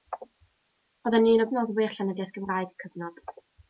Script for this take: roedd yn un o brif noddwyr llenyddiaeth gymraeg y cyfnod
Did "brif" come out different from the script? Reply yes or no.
yes